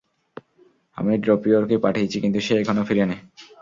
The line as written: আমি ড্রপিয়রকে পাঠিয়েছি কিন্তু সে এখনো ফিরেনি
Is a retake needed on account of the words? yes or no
no